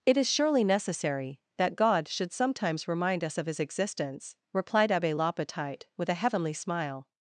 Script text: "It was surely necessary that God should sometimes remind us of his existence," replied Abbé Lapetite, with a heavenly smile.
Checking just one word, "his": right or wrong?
right